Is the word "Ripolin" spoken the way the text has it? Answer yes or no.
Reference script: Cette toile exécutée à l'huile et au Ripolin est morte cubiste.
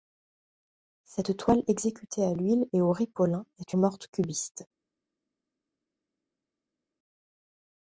yes